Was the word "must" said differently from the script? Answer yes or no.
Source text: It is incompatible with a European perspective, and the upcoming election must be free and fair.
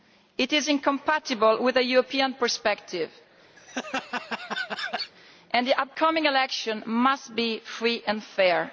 no